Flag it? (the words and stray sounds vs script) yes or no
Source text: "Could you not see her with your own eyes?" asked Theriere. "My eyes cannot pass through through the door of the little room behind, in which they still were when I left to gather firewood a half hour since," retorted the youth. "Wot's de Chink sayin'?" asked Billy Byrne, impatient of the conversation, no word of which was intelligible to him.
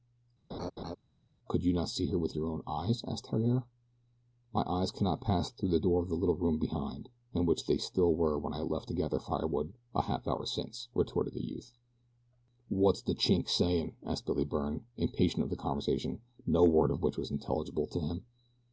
yes